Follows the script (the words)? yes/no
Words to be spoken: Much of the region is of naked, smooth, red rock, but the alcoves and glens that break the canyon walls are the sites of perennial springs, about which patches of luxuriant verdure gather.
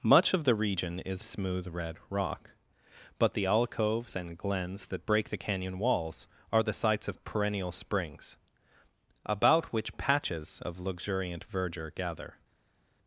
no